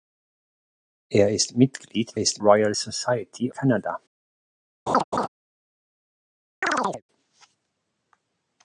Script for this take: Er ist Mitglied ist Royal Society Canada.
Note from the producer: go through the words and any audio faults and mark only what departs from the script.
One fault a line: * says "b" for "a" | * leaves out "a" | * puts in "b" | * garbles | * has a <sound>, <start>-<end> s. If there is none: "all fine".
* has a laugh, 4.9-5.3 s
* has a chirp, 6.6-7.0 s